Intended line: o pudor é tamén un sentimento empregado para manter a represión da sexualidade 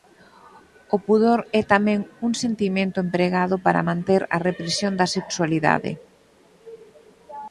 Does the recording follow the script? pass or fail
pass